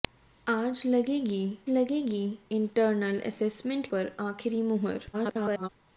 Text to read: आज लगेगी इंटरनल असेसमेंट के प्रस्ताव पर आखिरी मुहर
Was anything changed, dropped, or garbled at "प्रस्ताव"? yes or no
yes